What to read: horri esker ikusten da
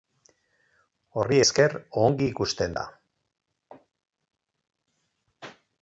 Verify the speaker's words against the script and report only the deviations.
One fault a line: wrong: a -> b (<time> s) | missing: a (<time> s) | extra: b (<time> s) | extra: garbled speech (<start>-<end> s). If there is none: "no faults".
extra: ongi (2.0 s)